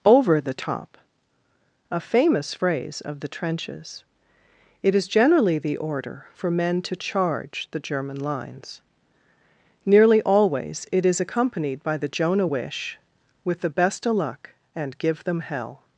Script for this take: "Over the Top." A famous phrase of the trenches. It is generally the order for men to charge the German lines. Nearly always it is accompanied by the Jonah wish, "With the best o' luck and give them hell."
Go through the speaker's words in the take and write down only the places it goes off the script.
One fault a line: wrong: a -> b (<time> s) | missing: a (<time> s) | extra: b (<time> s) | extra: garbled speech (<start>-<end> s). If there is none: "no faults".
no faults